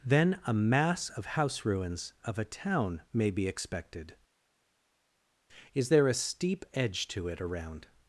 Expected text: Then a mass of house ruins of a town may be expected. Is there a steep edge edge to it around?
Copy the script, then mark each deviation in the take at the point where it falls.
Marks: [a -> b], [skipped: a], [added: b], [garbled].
Then a mass of house ruins of a town may be expected. Is there a steep edge [skipped: edge] to it around?